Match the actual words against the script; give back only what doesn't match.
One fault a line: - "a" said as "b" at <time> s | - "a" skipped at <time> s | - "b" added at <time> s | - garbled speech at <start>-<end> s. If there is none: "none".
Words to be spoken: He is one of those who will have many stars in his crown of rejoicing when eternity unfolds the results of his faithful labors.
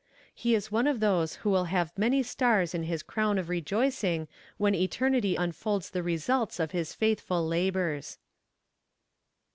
none